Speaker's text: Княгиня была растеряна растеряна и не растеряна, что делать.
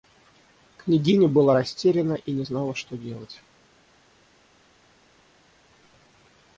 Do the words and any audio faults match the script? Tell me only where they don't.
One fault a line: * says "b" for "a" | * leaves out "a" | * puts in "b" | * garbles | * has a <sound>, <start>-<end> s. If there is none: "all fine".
* leaves out "растеряна"
* says "знала" for "растеряна"